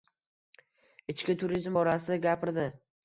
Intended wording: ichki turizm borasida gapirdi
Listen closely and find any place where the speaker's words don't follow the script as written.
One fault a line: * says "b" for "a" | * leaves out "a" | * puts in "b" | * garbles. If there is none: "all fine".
all fine